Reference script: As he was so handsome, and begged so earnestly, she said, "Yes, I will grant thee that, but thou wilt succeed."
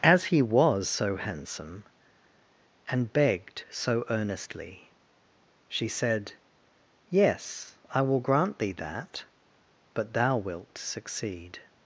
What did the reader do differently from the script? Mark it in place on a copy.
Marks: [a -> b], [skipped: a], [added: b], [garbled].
As he was so handsome, and begged so earnestly, she said, "Yes, I will grant thee that, but thou wilt succeed."